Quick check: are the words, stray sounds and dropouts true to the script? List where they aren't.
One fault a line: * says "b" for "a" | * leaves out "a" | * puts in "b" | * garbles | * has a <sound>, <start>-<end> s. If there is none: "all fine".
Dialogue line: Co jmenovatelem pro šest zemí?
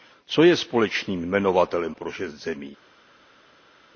* puts in "je společným"